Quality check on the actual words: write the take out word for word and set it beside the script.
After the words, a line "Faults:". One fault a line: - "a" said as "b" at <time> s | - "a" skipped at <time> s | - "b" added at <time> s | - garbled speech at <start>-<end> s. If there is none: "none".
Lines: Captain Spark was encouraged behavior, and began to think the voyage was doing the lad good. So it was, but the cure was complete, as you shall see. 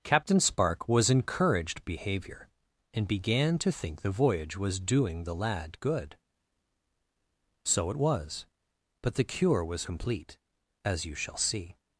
Captain Spark was encouraged behavior, and began to think the voyage was doing the lad good. So it was, but the cure was complete, as you shall see.
Faults:
none